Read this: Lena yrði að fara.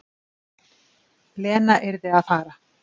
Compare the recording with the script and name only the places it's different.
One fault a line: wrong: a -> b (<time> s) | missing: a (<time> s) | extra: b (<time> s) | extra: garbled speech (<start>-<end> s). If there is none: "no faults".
no faults